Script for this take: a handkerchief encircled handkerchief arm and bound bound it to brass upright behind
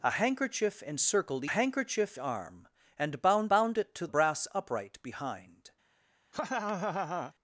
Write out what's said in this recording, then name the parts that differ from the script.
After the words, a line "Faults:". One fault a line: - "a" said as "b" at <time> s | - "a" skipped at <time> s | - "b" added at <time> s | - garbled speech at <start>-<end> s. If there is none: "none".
a handkerchief encircled handkerchief arm and bound bound it to brass upright behind
Faults:
none